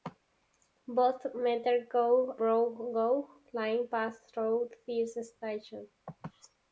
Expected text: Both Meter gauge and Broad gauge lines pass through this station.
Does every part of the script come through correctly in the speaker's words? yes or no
no